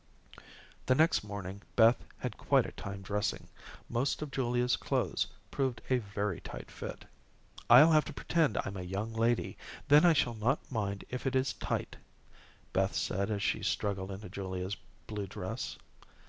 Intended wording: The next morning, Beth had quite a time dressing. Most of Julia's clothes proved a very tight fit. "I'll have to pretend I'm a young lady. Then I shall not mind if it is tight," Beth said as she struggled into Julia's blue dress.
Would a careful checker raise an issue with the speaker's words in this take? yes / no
no